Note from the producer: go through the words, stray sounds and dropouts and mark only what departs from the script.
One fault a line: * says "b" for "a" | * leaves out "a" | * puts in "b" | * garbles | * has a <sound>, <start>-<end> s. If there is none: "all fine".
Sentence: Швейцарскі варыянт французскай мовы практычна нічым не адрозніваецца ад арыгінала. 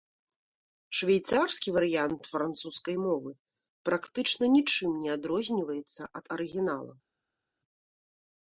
all fine